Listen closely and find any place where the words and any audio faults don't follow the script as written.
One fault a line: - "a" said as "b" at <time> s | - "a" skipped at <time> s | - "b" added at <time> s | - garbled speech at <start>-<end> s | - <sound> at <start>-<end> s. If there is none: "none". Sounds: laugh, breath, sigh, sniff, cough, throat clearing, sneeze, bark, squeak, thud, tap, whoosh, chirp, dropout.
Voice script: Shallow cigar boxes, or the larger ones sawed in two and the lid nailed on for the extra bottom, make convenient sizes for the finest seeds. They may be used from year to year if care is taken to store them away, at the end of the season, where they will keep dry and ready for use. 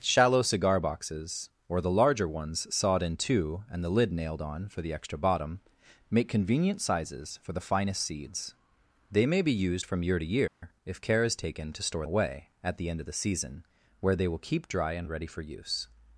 - dropout at 10.5-10.6 s
- "them" skipped at 12.1 s